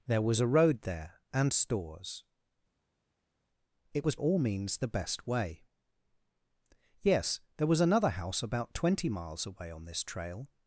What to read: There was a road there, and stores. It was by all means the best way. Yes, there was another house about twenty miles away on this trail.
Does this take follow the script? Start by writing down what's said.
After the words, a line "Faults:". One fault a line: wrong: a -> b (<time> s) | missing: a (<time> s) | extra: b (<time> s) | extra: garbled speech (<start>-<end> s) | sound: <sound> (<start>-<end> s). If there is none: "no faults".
There was a road there, and stores. It was all means the best way. Yes, there was another house about twenty miles away on this trail.
Faults:
missing: by (4.2 s)